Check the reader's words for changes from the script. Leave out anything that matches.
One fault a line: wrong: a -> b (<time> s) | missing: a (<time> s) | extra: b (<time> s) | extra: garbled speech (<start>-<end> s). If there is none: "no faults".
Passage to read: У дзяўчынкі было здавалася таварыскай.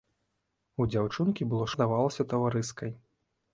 no faults